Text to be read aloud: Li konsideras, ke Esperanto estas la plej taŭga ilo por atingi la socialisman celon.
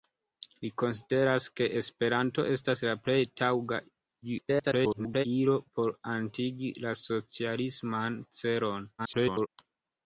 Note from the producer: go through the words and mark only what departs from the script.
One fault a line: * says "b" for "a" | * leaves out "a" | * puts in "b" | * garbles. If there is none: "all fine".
* garbles
* garbles